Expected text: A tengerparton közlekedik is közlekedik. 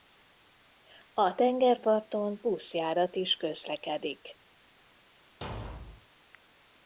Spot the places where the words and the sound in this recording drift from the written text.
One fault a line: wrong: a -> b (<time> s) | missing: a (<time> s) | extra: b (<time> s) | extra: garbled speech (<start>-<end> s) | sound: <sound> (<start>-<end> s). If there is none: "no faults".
wrong: közlekedik -> buszjárat (2.4 s)
sound: thud (5.4-6.1 s)